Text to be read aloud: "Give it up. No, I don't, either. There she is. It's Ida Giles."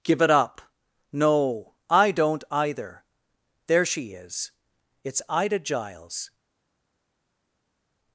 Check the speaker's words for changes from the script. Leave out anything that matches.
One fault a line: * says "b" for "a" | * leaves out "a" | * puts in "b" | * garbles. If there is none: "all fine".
all fine